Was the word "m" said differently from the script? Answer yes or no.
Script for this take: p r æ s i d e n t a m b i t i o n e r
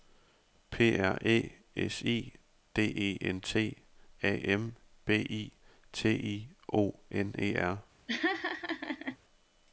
no